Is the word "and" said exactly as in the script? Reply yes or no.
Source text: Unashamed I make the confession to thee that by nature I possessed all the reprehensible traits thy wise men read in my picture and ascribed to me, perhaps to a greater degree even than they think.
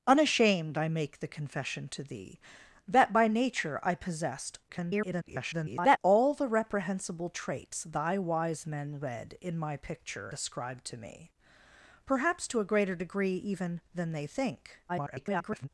no